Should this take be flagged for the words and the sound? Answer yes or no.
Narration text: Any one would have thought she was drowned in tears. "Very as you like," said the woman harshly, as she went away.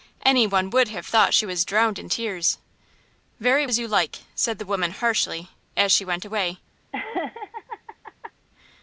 yes